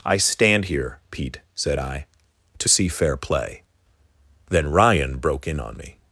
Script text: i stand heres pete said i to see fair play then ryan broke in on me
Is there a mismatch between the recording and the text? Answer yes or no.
yes